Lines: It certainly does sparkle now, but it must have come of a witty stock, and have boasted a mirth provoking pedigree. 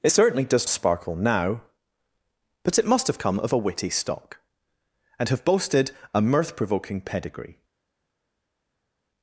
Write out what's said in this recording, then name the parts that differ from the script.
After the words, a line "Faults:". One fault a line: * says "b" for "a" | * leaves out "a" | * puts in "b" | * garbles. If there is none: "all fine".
It certainly does sparkle now, but it must have come of a witty stock, and have boasted a mirth provoking pedigree.
Faults:
all fine